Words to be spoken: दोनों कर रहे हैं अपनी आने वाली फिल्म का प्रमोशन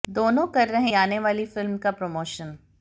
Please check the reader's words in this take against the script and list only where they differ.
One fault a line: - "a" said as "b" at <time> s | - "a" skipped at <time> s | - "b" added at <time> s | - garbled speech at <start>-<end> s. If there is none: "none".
- "हैं अपनी" skipped at 0.9 s